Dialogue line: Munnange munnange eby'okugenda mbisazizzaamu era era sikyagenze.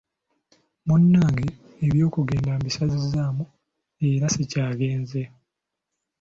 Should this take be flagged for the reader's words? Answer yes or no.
yes